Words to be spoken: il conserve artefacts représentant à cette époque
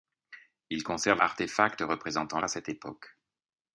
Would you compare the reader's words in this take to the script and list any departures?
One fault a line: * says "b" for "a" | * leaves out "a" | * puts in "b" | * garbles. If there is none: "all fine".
all fine